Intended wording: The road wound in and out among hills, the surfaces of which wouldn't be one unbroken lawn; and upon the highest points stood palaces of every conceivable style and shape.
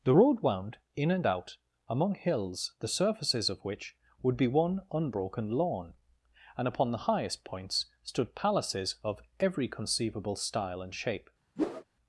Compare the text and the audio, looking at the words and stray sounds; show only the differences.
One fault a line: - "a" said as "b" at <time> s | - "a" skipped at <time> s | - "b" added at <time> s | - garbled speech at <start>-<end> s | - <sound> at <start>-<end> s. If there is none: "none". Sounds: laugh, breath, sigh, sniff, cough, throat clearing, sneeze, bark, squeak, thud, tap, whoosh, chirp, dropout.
- "wouldn't" said as "would" at 4.2 s
- whoosh at 11.6-11.8 s